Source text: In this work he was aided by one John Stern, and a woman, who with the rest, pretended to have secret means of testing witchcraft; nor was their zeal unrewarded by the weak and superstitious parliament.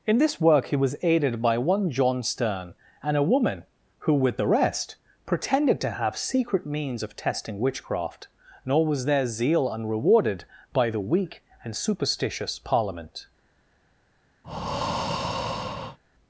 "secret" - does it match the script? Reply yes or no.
yes